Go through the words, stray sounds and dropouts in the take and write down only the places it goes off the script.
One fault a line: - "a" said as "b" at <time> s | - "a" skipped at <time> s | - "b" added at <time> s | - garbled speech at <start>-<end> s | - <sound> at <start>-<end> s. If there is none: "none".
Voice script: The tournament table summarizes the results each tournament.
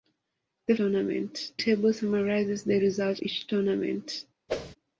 - whoosh at 4.5-4.8 s